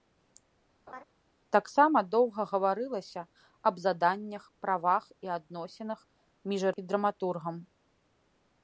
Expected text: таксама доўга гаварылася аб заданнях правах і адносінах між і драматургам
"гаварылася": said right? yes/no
yes